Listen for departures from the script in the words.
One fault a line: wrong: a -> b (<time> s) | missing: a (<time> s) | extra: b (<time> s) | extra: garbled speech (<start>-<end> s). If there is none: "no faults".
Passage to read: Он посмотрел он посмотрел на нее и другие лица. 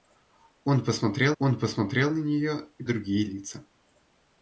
no faults